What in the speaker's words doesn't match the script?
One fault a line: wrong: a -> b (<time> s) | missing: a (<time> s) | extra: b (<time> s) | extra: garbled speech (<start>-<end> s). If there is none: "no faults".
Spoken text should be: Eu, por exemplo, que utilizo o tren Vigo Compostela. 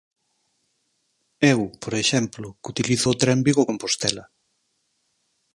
no faults